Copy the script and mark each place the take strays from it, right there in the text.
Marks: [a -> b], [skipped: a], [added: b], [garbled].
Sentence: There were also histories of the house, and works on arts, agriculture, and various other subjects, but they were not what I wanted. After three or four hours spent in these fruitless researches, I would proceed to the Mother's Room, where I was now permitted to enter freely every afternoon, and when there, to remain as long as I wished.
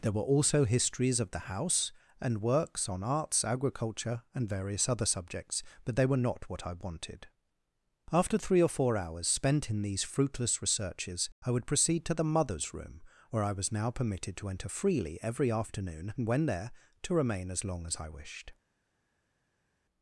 There were also histories of the house, and works on arts, agriculture, and various other subjects, but they were not what I wanted. After three or four hours spent in these fruitless researches, I would proceed to the Mother's Room, where I was now permitted to enter freely every afternoon, and when there, to remain as long as I wished.